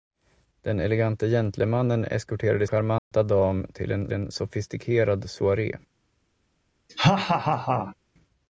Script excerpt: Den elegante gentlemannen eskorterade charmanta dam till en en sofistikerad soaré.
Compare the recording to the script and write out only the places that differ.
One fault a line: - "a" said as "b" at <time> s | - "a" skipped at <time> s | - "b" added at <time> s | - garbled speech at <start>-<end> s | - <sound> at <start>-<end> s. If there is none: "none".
- dropout at 3.0-3.1 s
- laugh at 6.9-8.0 s